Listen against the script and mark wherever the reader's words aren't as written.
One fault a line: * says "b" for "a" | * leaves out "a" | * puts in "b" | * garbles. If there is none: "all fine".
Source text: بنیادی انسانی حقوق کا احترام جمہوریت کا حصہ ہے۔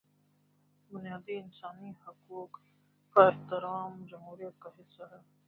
all fine